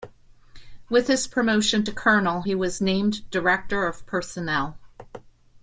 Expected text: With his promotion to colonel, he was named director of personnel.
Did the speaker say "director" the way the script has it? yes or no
yes